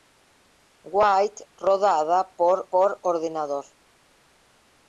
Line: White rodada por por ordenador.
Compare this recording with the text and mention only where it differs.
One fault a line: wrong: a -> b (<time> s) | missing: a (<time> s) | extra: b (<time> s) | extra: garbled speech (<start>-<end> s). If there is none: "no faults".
no faults